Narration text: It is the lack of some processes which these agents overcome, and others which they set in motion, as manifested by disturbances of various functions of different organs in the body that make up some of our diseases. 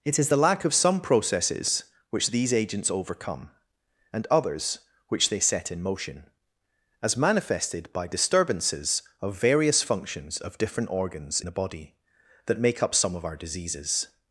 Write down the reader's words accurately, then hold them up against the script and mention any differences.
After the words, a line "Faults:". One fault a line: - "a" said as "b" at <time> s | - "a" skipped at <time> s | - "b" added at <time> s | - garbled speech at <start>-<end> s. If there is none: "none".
It is the lack of some processes which these agents overcome, and others which they set in motion, as manifested by disturbances of various functions of different organs the body that make up some of our diseases.
Faults:
- "in" skipped at 11.4 s